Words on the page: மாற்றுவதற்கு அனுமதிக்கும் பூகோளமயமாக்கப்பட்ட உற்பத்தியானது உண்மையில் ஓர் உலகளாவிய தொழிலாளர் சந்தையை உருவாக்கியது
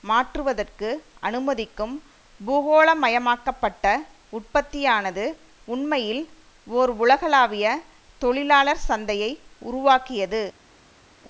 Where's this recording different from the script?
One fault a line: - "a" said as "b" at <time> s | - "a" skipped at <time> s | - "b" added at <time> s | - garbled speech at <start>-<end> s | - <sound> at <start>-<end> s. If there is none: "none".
none